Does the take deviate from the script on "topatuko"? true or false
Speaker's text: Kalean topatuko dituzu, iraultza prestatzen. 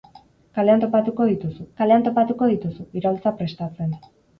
false